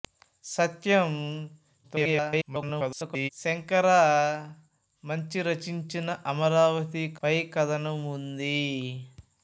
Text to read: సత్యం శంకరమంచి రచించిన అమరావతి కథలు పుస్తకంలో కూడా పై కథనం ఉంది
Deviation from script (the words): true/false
true